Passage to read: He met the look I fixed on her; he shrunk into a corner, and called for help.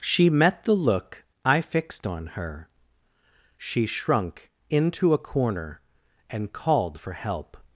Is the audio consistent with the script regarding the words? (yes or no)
no